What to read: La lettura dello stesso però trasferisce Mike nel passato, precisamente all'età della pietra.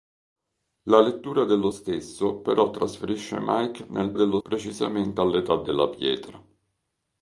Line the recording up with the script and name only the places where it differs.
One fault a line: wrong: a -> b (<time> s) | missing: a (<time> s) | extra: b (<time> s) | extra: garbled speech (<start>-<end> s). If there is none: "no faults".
wrong: passato -> dello (4.1 s)